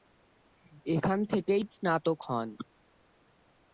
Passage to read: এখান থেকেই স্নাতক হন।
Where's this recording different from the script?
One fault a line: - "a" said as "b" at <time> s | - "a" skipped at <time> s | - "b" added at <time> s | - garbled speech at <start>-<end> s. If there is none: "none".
none